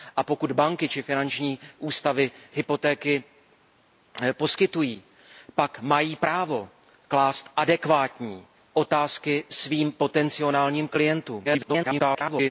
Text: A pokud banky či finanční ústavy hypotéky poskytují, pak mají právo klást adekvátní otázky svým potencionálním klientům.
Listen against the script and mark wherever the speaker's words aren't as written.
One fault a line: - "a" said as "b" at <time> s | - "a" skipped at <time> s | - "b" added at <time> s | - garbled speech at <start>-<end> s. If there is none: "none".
- garbled speech at 11.4-12.5 s